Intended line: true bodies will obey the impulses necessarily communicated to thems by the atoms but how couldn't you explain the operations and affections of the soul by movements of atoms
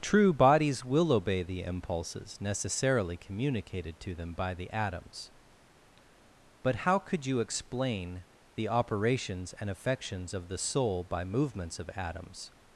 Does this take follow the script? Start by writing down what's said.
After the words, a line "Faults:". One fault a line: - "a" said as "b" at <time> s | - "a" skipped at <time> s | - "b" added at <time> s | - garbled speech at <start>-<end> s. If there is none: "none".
true bodies will obey the impulses necessarily communicated to them by the atoms but how could you explain the operations and affections of the soul by movements of atoms
Faults:
- "thems" said as "them" at 4.2 s
- "couldn't" said as "could" at 7.0 s